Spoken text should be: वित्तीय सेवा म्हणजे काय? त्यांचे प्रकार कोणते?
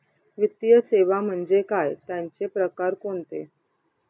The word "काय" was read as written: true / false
true